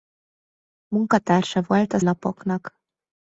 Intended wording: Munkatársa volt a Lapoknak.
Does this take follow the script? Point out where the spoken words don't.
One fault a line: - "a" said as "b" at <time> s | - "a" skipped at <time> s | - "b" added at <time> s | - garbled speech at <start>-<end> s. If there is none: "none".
none